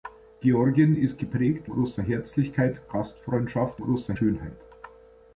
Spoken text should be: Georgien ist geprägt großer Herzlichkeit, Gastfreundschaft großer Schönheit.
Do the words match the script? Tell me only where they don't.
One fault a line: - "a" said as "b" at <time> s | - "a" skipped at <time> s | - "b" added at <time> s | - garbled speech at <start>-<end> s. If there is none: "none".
none